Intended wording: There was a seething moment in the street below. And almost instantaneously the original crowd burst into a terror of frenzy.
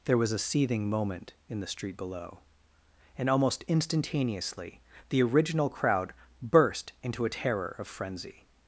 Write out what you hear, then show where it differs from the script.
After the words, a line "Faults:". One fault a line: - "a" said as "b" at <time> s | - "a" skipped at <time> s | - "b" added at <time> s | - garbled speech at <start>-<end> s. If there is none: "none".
There was a seething moment in the street below. And almost instantaneously the original crowd burst into a terror of frenzy.
Faults:
none